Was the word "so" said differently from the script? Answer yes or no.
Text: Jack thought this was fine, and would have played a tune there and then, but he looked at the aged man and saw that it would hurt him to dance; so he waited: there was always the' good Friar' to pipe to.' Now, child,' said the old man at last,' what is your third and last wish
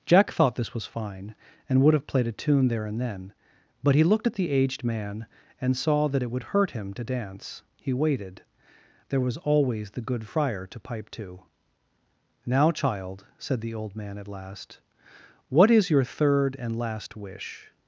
yes